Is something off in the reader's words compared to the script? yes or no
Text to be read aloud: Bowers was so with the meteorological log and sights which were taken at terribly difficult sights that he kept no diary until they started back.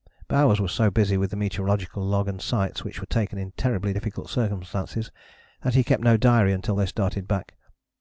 yes